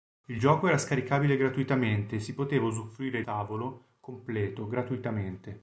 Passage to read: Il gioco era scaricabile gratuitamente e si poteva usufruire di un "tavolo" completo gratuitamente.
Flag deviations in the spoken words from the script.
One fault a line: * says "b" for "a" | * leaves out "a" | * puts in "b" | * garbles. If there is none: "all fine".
* leaves out "di un"